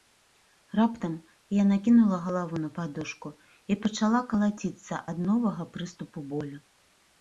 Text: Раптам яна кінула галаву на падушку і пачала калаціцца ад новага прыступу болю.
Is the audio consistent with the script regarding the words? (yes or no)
yes